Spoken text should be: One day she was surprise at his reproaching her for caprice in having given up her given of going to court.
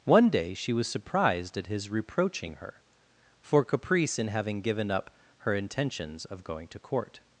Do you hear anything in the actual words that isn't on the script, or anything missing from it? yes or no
yes